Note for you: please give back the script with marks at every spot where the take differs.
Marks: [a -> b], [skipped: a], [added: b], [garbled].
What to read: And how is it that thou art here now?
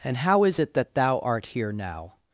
And how is it that thou art here now?